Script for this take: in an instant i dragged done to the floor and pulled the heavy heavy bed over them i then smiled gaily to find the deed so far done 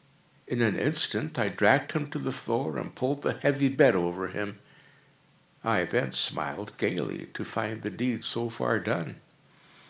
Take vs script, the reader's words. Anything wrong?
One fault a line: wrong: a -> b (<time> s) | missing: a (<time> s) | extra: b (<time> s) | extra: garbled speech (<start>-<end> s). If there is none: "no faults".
wrong: done -> him (1.9 s)
missing: heavy (3.7 s)
wrong: them -> him (4.3 s)